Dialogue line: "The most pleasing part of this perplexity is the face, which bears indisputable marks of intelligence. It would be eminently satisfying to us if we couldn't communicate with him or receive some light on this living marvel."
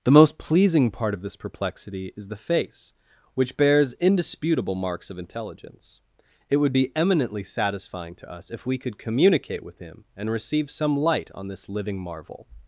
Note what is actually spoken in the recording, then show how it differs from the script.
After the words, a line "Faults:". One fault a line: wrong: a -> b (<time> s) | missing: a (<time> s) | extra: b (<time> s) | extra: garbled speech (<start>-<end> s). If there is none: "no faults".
"The most pleasing part of this perplexity is the face, which bears indisputable marks of intelligence. It would be eminently satisfying to us if we could communicate with him and receive some light on this living marvel."
Faults:
wrong: couldn't -> could (8.8 s)
wrong: or -> and (10.2 s)